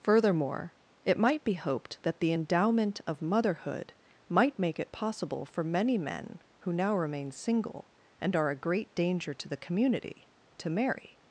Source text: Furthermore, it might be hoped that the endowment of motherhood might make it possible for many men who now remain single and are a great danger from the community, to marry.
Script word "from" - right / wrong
wrong